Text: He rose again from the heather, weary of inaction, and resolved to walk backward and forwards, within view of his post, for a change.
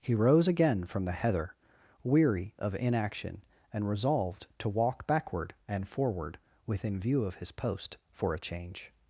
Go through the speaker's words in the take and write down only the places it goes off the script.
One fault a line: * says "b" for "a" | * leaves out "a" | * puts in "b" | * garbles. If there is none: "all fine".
* says "forward" for "forwards"